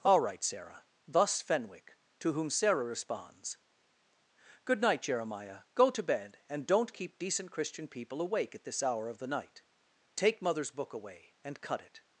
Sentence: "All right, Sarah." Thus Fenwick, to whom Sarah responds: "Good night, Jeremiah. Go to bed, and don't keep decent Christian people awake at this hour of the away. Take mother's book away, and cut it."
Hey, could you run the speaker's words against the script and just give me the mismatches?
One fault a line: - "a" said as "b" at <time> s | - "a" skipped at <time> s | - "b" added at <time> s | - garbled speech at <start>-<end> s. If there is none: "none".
- "away" said as "night" at 9.3 s